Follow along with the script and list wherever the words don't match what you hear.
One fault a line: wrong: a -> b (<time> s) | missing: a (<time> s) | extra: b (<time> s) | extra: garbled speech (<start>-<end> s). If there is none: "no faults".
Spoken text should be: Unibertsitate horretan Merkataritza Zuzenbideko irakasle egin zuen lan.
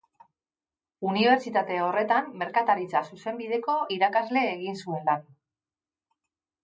no faults